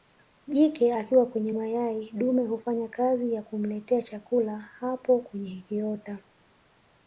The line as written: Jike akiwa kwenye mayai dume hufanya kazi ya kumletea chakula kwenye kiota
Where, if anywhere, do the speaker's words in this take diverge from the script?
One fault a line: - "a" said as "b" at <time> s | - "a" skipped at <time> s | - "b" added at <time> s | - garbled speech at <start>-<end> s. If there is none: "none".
- "hapo" added at 4.6 s